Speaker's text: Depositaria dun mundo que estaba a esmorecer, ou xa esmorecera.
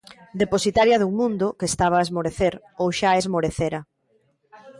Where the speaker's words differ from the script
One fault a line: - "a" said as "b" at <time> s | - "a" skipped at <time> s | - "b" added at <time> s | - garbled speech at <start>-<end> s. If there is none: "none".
none